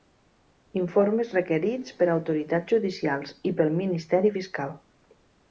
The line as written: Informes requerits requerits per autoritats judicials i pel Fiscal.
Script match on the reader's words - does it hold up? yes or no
no